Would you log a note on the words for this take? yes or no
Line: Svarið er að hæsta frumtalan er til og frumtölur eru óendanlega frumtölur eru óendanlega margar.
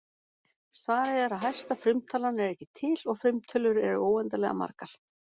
yes